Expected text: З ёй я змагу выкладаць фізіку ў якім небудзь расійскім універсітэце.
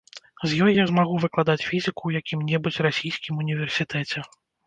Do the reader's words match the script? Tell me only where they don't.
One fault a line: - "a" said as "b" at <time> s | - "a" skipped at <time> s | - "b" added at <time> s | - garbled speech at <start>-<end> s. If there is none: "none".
none